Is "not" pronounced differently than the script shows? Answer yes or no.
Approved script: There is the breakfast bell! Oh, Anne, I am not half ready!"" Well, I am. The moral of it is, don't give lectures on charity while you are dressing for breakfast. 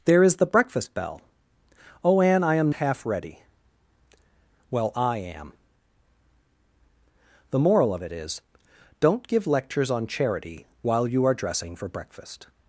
yes